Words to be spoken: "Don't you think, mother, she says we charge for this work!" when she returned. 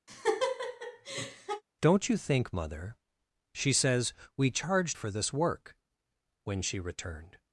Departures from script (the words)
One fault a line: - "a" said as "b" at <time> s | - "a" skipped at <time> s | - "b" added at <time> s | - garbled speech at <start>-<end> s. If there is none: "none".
none